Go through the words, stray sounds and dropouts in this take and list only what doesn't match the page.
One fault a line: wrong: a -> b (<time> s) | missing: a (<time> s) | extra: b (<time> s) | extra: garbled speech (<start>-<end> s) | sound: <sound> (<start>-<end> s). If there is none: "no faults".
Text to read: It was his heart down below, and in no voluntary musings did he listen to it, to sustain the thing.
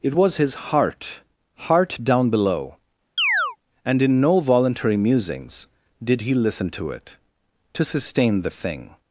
extra: heart (1.6 s)
sound: chirp (3.2-3.6 s)